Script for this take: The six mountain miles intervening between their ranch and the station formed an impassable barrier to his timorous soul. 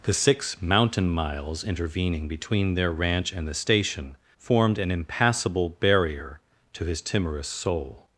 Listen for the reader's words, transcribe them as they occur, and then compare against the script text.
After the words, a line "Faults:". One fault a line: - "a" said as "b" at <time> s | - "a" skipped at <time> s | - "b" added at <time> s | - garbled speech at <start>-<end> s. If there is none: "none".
The six mountain miles intervening between their ranch and the station formed an impassable barrier to his timorous soul.
Faults:
none